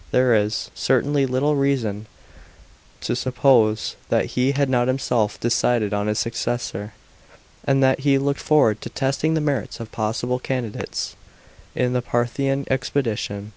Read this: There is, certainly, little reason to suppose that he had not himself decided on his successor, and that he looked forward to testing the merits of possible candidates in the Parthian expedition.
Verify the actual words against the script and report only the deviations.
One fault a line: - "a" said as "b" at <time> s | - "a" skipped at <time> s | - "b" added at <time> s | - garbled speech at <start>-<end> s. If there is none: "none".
none